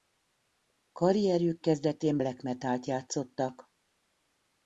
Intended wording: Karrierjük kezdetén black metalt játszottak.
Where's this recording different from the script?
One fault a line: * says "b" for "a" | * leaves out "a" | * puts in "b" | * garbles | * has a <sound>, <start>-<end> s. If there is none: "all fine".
all fine